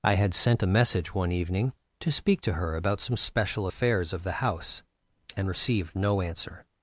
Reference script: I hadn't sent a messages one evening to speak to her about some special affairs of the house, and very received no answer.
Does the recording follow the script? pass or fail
fail